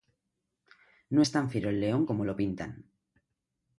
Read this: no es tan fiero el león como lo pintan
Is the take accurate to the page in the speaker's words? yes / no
yes